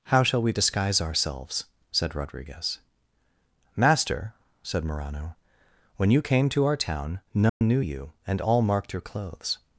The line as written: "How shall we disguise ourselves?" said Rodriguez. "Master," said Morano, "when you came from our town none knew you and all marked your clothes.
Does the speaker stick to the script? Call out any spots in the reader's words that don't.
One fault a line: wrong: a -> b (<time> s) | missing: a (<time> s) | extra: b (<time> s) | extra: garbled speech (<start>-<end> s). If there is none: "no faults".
wrong: from -> to (6.5 s)